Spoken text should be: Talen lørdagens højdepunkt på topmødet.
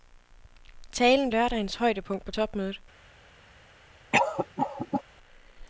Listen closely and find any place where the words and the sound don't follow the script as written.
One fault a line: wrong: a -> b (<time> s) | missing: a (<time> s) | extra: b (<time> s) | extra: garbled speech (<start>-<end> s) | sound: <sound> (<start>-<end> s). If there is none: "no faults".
sound: cough (4.1-5.0 s)